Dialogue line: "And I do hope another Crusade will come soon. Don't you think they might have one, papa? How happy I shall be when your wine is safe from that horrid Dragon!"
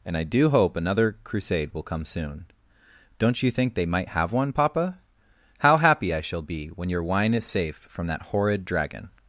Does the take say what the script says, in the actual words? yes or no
yes